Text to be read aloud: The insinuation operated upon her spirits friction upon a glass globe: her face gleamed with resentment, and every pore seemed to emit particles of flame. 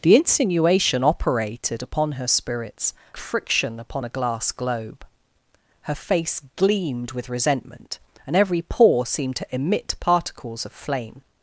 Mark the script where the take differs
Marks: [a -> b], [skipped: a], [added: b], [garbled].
The insinuation operated upon her spirits friction upon a glass globe: her face gleamed with resentment, and every pore seemed to emit particles of flame.